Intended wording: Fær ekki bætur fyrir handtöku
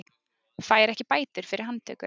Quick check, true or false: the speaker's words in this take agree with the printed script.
true